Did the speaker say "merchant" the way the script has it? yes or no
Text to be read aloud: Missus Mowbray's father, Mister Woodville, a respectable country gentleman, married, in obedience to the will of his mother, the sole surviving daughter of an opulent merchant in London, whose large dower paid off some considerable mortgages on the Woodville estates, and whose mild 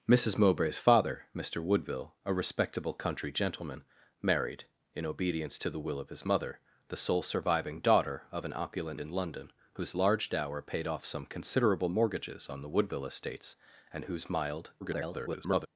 no